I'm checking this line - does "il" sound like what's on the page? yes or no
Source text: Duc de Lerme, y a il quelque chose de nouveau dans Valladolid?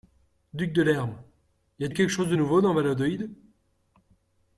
yes